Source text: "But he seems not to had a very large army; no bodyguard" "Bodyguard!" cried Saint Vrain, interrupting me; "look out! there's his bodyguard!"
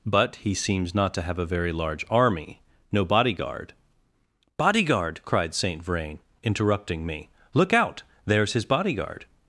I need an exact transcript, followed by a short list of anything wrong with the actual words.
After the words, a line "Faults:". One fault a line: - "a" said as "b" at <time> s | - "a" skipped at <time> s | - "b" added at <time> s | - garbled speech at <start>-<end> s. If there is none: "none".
"But he seems not to have a very large army; no bodyguard" "Bodyguard!" cried Saint Vrain, interrupting me; "look out! there's his bodyguard!"
Faults:
- "had" said as "have" at 1.2 s